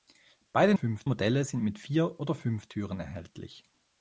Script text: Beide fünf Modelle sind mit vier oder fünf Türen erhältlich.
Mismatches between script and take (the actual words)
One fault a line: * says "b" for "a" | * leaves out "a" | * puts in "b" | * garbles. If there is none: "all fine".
all fine